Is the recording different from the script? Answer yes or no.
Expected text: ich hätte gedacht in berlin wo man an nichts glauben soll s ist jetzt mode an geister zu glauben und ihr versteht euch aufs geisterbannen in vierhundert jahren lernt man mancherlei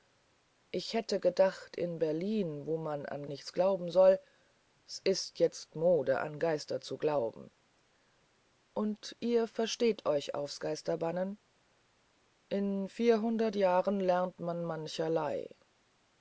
no